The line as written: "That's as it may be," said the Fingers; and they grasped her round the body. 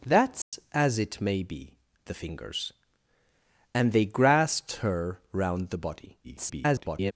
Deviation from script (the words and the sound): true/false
true